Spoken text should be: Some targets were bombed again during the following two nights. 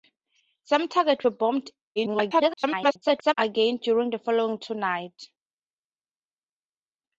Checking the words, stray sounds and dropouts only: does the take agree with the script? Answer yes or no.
no